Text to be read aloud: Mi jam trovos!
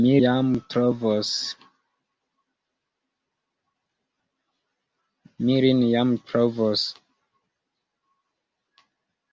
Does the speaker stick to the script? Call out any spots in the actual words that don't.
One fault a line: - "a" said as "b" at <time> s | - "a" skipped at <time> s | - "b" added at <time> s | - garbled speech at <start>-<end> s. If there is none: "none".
none